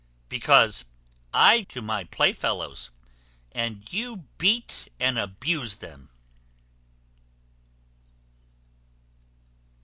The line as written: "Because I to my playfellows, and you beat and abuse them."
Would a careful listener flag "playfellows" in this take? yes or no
no